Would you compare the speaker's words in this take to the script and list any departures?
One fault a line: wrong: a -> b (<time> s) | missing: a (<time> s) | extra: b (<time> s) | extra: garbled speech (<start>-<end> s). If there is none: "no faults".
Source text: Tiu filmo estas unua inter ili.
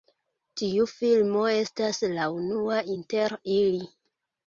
extra: la (2.2 s)